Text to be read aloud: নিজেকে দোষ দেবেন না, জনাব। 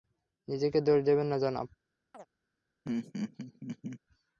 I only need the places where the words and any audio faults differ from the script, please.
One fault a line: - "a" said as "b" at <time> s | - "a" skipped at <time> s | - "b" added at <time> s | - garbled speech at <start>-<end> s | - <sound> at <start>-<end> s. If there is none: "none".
- chirp at 2.1-2.3 s
- laugh at 2.8-4.0 s